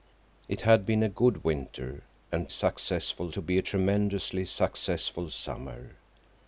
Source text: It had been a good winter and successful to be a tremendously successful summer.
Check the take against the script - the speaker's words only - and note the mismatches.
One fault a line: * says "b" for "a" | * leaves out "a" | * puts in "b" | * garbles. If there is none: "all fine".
all fine